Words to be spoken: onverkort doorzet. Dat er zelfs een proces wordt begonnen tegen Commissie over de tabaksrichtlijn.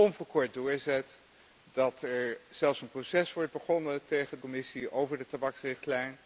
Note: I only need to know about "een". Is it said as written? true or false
true